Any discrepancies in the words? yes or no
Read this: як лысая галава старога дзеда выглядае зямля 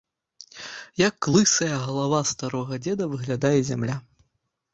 no